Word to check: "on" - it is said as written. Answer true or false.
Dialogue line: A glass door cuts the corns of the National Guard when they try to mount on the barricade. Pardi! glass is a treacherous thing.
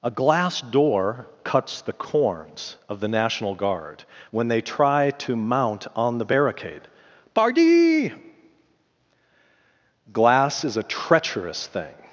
true